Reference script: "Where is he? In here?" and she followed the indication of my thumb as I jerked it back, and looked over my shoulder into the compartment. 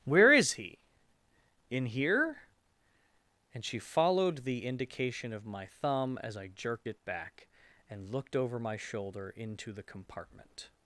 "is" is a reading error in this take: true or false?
false